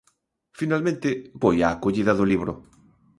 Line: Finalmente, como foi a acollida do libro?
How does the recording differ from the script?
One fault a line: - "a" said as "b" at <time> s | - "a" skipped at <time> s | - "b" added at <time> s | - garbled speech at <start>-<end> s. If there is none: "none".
- "como" skipped at 1.1 s